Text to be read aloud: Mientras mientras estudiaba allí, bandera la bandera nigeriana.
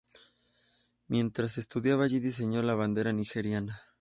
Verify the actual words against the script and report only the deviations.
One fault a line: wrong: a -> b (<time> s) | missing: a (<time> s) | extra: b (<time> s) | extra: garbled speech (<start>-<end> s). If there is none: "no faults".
missing: mientras (1.6 s)
wrong: bandera -> diseñó (2.2 s)